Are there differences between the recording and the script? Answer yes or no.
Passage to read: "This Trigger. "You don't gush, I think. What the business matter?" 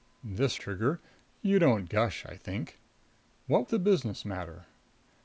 no